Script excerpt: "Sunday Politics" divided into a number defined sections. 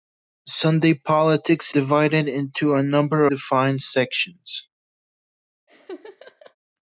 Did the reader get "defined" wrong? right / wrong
right